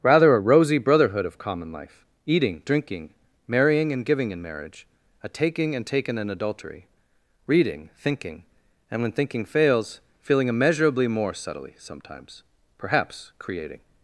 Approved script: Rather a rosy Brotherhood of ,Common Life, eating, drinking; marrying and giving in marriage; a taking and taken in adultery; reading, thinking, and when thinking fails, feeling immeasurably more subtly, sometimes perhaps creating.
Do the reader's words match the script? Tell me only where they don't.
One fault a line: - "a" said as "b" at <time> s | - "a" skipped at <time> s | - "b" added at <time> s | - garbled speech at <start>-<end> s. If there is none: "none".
none